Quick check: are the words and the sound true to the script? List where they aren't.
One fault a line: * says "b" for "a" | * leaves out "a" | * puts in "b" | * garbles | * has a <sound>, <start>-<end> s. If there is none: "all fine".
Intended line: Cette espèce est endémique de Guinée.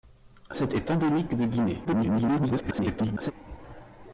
* leaves out "espèce"
* garbles